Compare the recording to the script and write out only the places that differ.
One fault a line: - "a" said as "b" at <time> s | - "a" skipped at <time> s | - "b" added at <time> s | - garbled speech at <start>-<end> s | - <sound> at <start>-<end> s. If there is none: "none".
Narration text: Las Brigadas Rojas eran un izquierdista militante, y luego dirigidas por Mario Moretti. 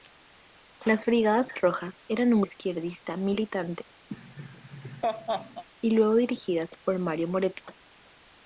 - laugh at 4.1-5.6 s